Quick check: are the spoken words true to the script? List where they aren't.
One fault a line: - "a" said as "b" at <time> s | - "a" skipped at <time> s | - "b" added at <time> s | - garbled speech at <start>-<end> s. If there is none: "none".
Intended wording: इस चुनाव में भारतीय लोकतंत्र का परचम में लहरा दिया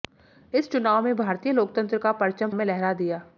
none